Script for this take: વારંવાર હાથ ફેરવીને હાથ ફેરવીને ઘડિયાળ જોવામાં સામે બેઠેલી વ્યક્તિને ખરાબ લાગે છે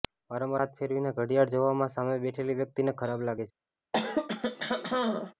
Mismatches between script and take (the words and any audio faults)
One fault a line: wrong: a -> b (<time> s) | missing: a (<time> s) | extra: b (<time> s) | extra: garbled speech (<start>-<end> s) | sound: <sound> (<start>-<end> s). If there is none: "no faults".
missing: હાથ ફેરવીને (1.1 s)
sound: throat clearing (3.9-5.3 s)